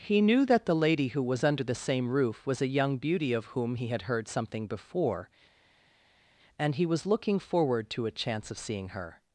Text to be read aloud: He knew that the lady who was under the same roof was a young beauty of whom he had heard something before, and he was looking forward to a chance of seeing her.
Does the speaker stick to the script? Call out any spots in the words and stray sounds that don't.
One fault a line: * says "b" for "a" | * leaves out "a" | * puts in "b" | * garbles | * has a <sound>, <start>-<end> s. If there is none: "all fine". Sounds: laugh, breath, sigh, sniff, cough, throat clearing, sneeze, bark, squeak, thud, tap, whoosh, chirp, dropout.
all fine